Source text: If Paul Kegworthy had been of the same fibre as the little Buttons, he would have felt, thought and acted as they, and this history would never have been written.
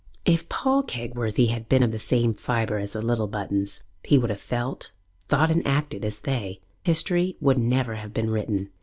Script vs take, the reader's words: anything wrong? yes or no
yes